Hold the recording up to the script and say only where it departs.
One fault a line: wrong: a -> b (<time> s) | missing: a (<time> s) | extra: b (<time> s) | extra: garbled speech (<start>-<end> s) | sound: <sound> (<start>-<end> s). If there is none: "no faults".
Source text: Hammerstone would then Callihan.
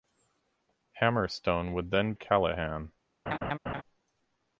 sound: laugh (3.3-3.8 s)